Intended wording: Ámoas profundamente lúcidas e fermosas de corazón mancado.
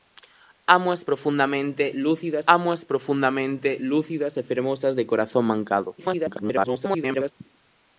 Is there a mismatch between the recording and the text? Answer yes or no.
yes